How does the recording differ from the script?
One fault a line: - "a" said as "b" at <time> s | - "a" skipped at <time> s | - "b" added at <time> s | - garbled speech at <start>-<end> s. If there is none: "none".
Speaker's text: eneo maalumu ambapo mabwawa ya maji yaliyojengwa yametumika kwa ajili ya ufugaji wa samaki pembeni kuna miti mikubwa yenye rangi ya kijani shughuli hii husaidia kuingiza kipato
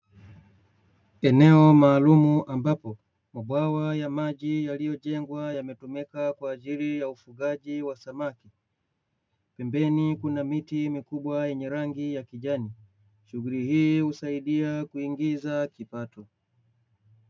none